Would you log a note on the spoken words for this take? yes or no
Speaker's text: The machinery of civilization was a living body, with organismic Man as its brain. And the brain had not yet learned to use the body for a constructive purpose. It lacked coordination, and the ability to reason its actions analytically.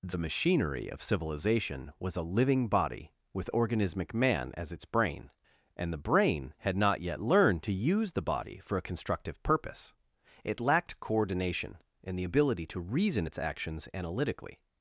no